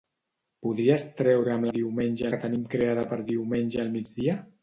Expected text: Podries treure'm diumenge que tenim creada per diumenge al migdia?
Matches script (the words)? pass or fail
pass